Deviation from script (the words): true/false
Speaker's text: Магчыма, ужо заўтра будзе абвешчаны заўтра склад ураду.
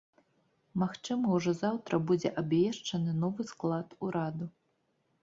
true